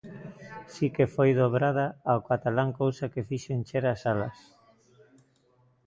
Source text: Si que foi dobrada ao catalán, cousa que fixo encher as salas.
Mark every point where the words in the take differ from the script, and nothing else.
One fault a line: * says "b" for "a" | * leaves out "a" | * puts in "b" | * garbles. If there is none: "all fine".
all fine